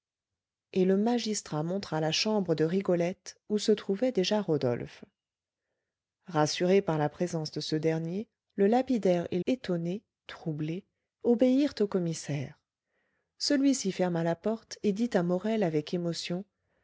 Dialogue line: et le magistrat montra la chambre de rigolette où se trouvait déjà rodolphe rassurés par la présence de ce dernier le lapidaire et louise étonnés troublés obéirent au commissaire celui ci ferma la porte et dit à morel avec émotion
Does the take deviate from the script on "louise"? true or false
true